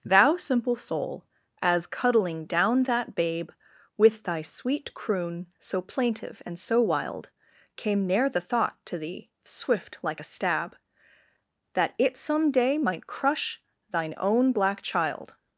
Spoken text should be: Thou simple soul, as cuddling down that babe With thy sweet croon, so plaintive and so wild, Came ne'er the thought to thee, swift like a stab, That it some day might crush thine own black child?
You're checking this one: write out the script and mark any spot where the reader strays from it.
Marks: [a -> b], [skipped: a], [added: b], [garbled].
Thou simple soul, as cuddling down that babe With thy sweet croon, so plaintive and so wild, Came ne'er the thought to thee, swift like a stab, That it some day might crush thine own black child?